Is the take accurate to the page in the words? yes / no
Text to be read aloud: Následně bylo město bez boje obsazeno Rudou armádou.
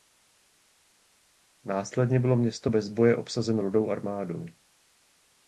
yes